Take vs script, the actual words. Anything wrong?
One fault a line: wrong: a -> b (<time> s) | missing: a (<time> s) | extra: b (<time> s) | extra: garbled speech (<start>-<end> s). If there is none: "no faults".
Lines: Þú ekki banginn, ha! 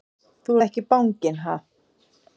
no faults